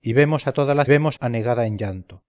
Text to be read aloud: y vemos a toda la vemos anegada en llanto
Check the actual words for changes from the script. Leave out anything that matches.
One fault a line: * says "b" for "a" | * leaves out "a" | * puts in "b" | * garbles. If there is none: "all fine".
all fine